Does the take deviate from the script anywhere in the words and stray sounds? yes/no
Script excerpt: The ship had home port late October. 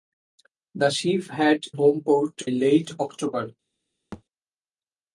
yes